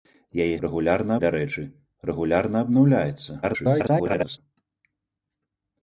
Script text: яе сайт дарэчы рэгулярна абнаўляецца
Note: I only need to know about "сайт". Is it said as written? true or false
false